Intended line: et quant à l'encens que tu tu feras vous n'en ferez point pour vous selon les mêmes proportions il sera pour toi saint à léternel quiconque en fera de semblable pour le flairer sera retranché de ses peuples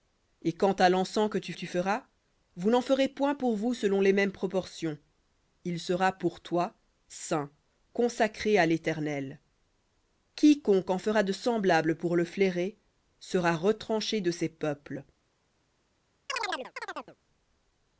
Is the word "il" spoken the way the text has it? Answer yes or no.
yes